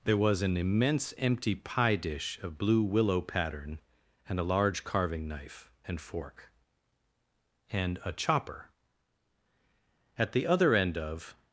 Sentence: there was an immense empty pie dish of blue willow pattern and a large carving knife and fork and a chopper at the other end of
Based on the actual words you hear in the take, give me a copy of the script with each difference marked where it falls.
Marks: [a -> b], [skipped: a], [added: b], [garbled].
there was an immense empty pie dish of blue willow pattern and a large carving knife and fork and a chopper at the other end of